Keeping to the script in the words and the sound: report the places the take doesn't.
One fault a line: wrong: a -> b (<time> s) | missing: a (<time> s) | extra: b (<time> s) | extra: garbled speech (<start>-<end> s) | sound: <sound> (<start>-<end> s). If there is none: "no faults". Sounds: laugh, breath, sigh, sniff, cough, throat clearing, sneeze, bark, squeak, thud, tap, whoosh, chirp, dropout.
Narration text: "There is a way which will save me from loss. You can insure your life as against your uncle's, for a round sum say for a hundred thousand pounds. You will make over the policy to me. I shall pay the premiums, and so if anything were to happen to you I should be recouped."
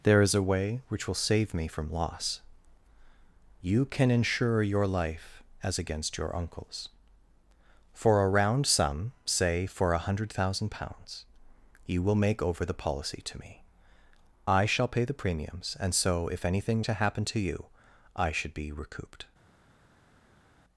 missing: were (16.8 s)